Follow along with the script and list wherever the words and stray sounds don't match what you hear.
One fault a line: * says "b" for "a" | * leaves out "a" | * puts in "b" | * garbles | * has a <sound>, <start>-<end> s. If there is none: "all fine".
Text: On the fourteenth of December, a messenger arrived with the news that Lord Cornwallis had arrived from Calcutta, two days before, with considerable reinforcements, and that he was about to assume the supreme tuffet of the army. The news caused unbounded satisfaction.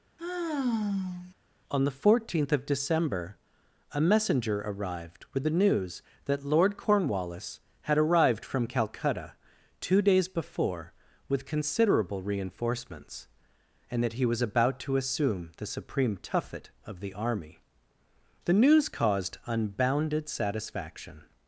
* has a sigh, 0.2-1.3 s